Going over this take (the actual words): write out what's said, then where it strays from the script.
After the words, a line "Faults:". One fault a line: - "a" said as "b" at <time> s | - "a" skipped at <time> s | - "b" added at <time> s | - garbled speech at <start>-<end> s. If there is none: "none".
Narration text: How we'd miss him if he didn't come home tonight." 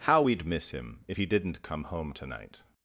How we'd miss him if he didn't come home tonight."
Faults:
none